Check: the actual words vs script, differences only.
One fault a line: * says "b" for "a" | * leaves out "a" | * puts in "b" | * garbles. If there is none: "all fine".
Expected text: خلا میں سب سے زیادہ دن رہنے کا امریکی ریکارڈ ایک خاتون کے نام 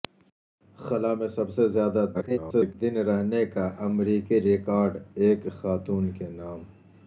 * garbles